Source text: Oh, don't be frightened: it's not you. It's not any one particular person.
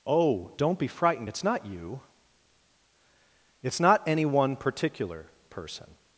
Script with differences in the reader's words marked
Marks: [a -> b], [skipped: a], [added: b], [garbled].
Oh, don't be frightened: it's not you. It's not any one particular person.